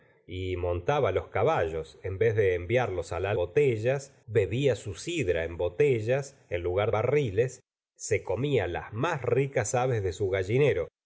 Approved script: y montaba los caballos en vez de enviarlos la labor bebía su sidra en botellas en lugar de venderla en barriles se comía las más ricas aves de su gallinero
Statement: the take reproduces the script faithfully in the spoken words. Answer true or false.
false